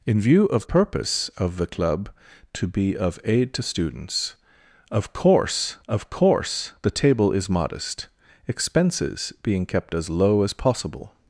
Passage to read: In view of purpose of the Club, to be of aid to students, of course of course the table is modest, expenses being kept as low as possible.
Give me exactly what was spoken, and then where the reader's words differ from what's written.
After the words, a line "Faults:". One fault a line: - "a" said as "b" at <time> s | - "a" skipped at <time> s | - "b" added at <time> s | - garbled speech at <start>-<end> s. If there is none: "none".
In view of purpose of the Club, to be of aid to students, of course of course the table is modest, expenses being kept as low as possible.
Faults:
none